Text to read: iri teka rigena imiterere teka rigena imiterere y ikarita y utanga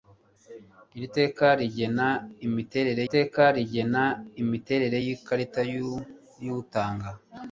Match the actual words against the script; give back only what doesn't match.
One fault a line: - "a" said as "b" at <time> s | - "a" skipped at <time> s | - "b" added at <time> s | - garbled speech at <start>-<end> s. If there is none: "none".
none